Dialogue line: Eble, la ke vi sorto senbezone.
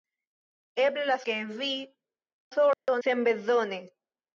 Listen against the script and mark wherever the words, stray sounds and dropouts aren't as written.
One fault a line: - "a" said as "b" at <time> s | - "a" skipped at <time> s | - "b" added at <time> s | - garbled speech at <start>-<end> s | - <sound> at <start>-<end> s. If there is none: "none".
- dropout at 2.7-2.9 s